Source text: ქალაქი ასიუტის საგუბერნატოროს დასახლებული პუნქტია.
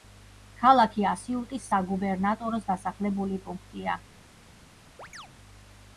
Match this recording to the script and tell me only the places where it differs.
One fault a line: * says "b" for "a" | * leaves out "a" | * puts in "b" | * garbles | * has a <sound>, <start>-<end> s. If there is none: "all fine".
* has a chirp, 5.0-5.3 s